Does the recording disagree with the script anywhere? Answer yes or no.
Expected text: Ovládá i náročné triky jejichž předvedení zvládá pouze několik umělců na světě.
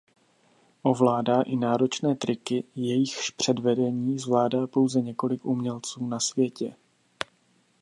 no